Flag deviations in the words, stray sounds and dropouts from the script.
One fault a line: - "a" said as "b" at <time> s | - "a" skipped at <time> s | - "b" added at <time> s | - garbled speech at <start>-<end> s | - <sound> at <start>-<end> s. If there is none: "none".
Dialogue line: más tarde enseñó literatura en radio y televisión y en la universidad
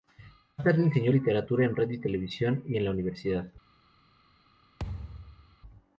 - thud at 4.8-5.6 s